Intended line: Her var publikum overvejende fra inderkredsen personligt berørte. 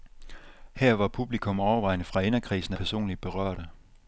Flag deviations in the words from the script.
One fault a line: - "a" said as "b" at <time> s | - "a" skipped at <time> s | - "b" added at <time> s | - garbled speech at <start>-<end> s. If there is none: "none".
none